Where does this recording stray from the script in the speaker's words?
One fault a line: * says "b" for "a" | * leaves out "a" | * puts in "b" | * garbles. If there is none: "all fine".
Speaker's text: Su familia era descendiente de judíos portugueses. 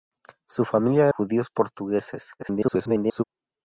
* leaves out "era descendiente de"
* garbles